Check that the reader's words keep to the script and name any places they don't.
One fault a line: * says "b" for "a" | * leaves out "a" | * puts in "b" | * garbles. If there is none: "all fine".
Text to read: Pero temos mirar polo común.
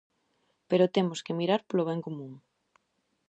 * puts in "que"
* puts in "ben"